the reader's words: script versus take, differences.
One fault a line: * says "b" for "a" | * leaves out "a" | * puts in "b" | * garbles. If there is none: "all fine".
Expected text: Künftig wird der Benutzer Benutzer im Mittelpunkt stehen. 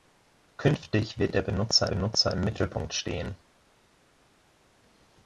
all fine